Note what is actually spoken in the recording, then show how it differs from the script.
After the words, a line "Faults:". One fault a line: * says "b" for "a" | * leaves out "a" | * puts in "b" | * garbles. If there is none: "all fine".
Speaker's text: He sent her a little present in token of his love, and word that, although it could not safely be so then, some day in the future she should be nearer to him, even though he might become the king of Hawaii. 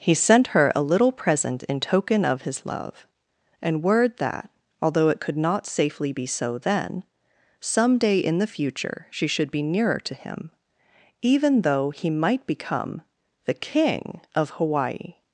He sent her a little present in token of his love, and word that, although it could not safely be so then, some day in the future she should be nearer to him, even though he might become the king of Hawaii.
Faults:
all fine